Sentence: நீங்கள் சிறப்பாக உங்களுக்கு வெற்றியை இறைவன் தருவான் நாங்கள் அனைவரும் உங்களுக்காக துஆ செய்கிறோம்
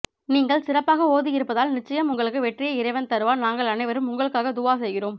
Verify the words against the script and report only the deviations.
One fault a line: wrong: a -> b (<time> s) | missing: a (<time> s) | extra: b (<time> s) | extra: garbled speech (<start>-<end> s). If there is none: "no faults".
extra: ஓதி இருப்பதால் நிச்சயம் (1.1 s)